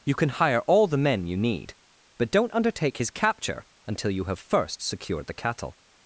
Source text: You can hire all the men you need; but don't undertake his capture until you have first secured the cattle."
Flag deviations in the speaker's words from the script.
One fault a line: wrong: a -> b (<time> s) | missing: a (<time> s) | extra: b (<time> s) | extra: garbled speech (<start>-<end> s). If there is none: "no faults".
no faults